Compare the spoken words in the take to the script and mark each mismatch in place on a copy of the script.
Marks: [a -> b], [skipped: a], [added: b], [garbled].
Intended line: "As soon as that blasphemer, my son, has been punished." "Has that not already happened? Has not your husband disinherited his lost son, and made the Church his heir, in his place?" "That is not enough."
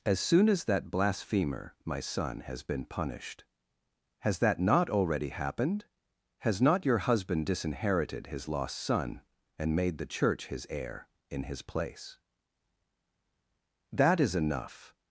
"As soon as that blasphemer, my son, has been punished." "Has that not already happened? Has not your husband disinherited his lost son, and made the Church his heir, in his place?" "That is [skipped: not] enough."